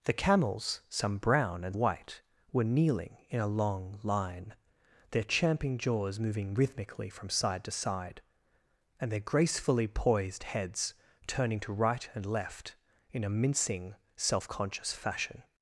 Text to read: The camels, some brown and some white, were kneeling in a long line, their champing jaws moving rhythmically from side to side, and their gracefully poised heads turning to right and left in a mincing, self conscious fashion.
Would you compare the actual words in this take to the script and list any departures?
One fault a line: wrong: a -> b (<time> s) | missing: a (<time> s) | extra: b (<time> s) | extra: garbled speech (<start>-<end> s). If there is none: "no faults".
missing: some (1.8 s)